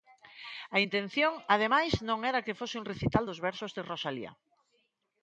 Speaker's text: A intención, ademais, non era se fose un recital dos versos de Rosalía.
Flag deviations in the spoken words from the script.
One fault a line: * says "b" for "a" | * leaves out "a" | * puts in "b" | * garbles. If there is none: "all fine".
* says "que" for "se"